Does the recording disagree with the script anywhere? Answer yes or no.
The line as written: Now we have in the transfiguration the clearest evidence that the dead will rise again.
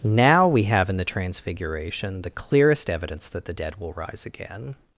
no